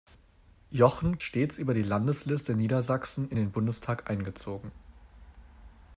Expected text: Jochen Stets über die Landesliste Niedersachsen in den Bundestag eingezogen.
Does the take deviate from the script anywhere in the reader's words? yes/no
no